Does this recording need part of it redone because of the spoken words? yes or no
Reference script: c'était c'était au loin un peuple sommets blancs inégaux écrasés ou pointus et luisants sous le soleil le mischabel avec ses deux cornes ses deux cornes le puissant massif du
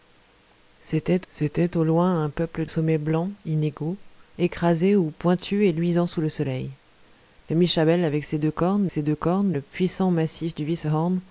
no